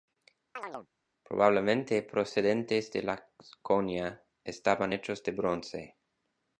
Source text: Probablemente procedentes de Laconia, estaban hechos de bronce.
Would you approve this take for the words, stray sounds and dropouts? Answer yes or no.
no